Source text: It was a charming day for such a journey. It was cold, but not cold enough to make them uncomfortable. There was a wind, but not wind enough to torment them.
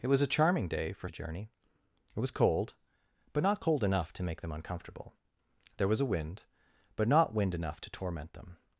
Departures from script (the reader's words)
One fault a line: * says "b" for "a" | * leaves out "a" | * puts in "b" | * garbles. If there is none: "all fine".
* leaves out "such"